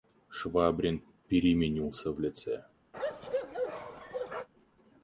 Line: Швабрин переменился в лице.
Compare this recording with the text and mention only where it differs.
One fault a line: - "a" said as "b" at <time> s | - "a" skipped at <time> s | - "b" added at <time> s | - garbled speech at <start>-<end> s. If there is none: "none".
none